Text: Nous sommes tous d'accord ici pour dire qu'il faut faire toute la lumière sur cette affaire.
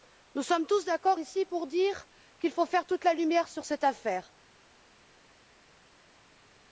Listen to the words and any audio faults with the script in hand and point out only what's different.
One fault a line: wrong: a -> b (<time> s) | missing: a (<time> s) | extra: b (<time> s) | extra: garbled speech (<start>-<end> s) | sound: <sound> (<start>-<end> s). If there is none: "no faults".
no faults